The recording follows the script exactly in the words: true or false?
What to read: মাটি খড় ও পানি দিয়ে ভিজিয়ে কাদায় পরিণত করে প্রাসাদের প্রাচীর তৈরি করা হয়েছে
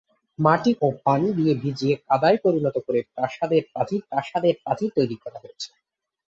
false